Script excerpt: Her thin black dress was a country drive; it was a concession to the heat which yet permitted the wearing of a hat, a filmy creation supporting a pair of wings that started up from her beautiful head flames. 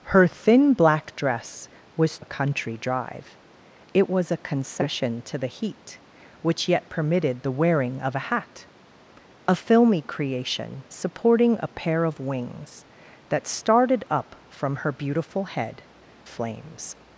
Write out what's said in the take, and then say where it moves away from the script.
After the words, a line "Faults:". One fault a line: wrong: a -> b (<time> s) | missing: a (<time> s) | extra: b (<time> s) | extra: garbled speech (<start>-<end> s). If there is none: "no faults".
Her thin black dress was a country drive; it was a concession to the heat which yet permitted the wearing of a hat, a filmy creation supporting a pair of wings that started up from her beautiful head flames.
Faults:
no faults